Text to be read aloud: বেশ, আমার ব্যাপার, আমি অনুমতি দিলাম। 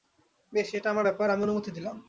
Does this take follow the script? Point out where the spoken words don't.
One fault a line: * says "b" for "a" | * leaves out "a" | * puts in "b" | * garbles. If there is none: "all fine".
* puts in "এটা"